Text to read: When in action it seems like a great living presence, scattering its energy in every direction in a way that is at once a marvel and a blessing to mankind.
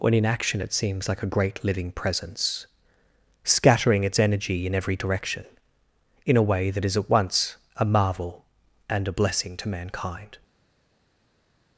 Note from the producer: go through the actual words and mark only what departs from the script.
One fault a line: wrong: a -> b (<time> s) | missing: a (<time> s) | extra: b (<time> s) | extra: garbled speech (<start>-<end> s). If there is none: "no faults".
no faults